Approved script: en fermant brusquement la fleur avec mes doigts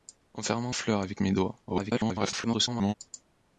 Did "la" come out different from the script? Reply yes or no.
yes